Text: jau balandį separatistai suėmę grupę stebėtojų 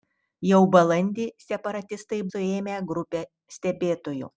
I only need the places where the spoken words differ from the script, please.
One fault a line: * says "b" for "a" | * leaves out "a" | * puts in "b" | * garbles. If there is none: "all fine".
all fine